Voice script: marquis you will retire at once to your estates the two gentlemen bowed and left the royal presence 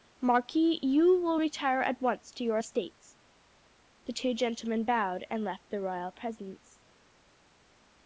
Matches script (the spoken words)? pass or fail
pass